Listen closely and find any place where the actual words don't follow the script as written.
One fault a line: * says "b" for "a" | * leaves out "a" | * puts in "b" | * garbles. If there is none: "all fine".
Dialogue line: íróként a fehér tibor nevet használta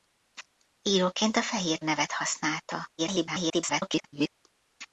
* leaves out "tibor"
* garbles